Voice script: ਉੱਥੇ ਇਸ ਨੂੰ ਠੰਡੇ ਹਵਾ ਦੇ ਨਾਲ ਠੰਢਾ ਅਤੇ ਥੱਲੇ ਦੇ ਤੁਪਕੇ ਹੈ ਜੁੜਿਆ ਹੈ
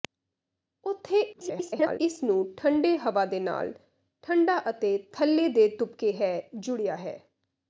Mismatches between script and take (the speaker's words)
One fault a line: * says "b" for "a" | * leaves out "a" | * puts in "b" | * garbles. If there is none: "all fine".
* garbles